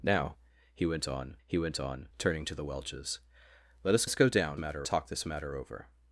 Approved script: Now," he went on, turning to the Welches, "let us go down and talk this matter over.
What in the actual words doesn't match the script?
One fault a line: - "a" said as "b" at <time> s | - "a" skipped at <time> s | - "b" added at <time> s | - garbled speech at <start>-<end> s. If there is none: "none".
- "he went on" added at 1.5 s
- "us" added at 4.0 s
- "and" said as "matter" at 4.6 s